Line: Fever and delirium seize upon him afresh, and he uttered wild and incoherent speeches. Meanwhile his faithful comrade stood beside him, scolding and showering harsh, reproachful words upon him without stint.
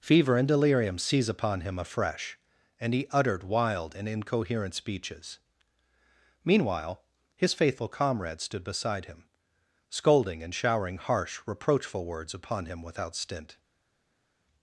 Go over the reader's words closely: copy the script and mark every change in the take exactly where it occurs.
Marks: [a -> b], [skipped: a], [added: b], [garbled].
Fever and delirium seize upon him afresh, and he uttered wild and incoherent speeches. Meanwhile his faithful comrade stood beside him, scolding and showering harsh, reproachful words upon him without stint.